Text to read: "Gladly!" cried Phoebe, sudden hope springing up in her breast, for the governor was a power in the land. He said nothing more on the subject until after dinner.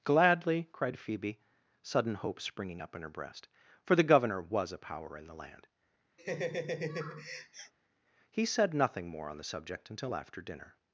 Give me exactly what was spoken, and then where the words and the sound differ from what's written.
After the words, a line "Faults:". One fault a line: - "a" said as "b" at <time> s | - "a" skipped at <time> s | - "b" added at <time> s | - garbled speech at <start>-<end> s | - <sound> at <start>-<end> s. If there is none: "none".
"Gladly!" cried Phoebe, sudden hope springing up in her breast, for the governor was a power in the land. He said nothing more on the subject until after dinner.
Faults:
- laugh at 6.2-7.7 s